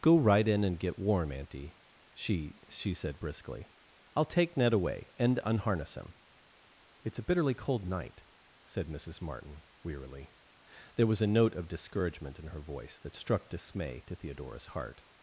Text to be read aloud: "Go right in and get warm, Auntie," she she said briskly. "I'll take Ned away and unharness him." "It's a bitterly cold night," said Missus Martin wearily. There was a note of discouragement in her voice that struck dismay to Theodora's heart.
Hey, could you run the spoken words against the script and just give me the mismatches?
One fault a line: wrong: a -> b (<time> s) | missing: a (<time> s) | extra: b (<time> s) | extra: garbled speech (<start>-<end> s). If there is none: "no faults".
no faults